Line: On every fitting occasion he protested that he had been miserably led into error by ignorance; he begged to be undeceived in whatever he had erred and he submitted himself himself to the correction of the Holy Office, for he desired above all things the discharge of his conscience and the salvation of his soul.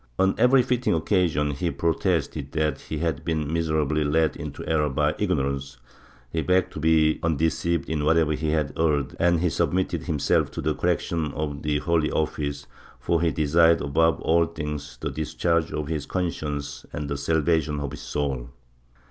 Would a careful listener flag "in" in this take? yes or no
no